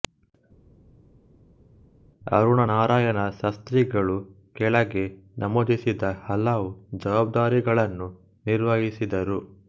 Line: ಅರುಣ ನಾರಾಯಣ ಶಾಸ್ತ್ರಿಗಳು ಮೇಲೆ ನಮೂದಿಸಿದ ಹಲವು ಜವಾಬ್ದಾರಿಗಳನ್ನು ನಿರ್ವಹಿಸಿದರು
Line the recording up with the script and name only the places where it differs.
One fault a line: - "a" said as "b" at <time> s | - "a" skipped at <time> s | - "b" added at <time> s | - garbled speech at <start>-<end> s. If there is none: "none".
- "ಮೇಲೆ" said as "ಕೆಳಗೆ" at 4.5 s